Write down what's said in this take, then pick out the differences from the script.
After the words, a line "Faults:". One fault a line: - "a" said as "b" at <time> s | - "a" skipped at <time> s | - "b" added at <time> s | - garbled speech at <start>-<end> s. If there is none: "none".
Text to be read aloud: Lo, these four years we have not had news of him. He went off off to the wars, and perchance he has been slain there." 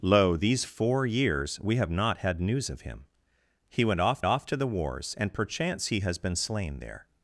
Lo, these four years we have not had news of him. He went off off to the wars, and perchance he has been slain there."
Faults:
none